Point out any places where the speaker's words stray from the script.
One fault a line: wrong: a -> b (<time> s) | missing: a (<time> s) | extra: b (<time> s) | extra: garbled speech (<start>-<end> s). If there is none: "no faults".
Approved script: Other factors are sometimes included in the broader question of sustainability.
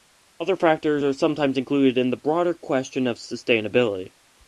no faults